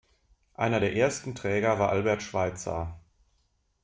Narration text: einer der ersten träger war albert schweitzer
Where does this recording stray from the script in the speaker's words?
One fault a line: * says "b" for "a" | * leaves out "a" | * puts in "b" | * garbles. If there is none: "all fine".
all fine